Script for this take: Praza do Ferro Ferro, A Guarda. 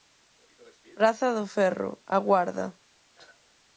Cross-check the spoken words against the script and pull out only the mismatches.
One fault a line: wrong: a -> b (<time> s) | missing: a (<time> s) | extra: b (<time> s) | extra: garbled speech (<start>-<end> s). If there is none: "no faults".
missing: Ferro (1.9 s)